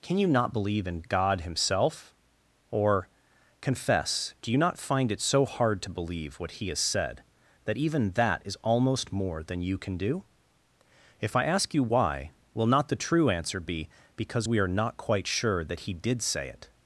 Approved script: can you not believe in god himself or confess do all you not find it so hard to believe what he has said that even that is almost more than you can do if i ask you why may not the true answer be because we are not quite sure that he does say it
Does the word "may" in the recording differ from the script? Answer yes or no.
yes